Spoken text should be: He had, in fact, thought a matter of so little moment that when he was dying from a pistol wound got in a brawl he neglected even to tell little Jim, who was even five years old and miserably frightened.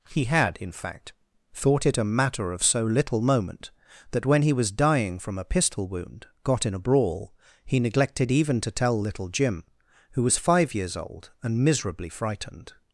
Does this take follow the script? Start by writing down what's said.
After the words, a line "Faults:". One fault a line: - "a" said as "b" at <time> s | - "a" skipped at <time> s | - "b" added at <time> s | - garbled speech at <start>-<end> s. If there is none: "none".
He had, in fact, thought it a matter of so little moment that when he was dying from a pistol wound got in a brawl he neglected even to tell little Jim, who was five years old and miserably frightened.
Faults:
- "it" added at 1.9 s
- "even" skipped at 10.4 s